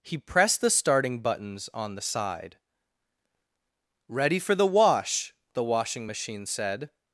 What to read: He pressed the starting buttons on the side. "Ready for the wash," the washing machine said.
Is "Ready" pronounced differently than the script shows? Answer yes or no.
no